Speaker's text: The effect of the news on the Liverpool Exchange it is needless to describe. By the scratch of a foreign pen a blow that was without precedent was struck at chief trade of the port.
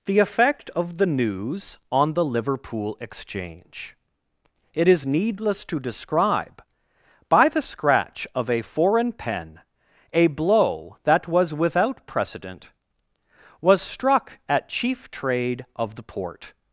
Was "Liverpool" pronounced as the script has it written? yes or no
yes